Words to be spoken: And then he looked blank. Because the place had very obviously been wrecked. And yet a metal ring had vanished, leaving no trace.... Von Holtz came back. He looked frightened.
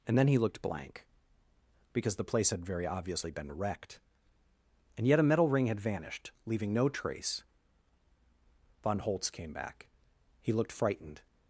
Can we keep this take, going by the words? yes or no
yes